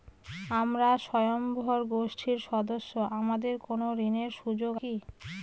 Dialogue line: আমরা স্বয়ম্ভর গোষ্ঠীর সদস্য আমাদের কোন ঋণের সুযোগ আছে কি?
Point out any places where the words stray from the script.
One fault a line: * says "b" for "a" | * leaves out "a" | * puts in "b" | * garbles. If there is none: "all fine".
* leaves out "আছে"